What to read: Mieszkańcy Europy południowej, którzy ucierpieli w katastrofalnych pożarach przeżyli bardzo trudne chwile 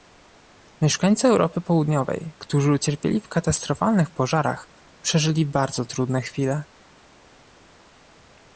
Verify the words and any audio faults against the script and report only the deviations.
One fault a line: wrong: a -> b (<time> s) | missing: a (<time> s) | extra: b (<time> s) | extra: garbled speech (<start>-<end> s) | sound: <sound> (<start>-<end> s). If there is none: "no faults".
no faults